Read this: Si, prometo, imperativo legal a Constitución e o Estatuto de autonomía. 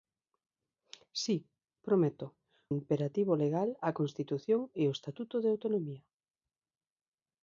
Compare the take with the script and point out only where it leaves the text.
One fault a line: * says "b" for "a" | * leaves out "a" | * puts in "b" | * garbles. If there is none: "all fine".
all fine